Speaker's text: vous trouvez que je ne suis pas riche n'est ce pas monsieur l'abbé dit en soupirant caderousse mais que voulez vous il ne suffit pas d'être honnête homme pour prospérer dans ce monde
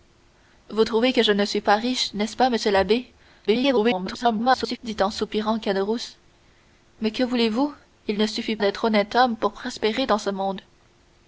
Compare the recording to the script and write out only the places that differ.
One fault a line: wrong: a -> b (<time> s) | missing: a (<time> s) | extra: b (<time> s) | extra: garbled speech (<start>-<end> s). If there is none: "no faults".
extra: garbled speech (3.5-4.8 s)
missing: pas (8.6 s)